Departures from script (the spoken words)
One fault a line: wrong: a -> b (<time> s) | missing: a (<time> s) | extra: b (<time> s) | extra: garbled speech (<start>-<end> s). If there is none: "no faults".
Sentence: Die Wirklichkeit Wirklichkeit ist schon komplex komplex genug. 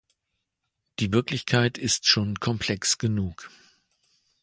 missing: Wirklichkeit (1.8 s)
missing: komplex (3.0 s)